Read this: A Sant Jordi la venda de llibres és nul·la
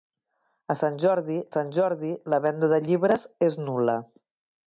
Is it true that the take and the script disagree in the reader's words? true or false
true